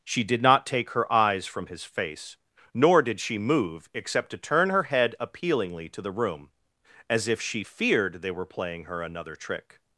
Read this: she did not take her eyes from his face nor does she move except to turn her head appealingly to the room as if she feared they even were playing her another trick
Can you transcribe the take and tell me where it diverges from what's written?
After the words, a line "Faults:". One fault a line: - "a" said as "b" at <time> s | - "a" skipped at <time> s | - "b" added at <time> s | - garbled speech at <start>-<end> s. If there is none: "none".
she did not take her eyes from his face nor did she move except to turn her head appealingly to the room as if she feared they were playing her another trick
Faults:
- "does" said as "did" at 3.0 s
- "even" skipped at 8.3 s